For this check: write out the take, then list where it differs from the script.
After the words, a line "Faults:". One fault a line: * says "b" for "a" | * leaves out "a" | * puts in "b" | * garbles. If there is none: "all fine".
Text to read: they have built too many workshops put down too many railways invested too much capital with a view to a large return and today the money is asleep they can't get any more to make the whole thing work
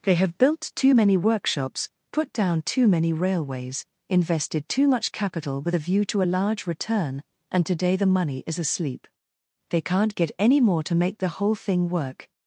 they have built too many workshops put down too many railways invested too much capital with a view to a large return and today the money is asleep they can't get any more to make the whole thing work
Faults:
all fine